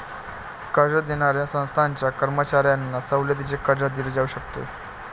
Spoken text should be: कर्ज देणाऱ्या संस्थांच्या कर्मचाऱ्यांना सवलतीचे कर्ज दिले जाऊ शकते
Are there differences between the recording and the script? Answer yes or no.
no